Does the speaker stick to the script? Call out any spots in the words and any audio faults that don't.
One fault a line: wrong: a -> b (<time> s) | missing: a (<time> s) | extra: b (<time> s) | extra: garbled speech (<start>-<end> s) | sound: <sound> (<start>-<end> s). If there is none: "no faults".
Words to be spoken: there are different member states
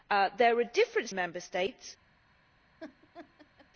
sound: laugh (2.8-3.7 s)